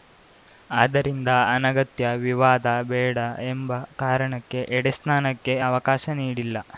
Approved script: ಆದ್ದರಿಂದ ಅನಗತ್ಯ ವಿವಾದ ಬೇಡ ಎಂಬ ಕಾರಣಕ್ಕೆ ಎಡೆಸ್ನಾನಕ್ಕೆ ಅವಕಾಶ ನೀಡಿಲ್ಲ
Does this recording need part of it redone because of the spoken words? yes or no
no